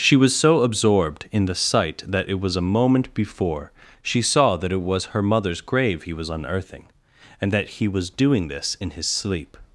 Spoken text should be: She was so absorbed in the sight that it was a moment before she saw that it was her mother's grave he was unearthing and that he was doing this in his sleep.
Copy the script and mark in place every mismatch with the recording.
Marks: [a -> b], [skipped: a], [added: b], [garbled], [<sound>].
She was so absorbed in the sight that it was a moment before she saw that it was her mother's grave he was unearthing and that he was doing this in his sleep.